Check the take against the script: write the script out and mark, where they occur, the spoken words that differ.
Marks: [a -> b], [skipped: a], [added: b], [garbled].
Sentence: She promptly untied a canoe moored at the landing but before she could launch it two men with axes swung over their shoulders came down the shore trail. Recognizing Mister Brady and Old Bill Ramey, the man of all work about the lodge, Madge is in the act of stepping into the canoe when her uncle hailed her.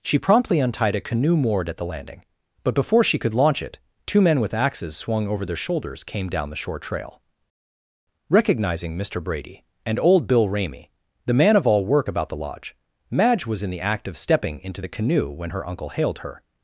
She promptly untied a canoe moored at the landing but before she could launch it two men with axes swung over their shoulders came down the shore trail. Recognizing Mister Brady and Old Bill Ramey, the man of all work about the lodge, Madge [is -> was] in the act of stepping into the canoe when her uncle hailed her.